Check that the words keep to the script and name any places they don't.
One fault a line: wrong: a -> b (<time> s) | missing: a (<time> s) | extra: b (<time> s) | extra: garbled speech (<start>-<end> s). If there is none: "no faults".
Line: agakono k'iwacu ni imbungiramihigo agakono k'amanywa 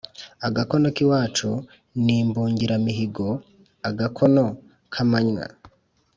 no faults